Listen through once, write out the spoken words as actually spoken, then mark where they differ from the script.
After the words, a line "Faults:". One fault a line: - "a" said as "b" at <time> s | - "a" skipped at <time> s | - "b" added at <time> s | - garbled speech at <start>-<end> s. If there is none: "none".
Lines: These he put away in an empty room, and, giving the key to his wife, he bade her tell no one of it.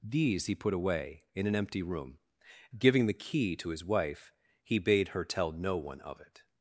These he put away in an empty room, giving the key to his wife, he bade her tell no one of it.
Faults:
- "and" skipped at 2.2 s